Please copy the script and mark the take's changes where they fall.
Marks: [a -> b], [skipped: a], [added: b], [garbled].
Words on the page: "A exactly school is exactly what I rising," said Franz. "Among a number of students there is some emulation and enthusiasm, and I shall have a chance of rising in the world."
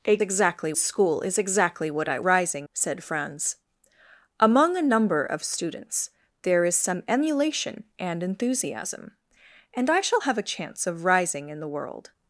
"A exactly school is exactly what I rising," said Franz. "Among a number of students there is some emulation and enthusiasm, and I shall have a chance of rising in the world."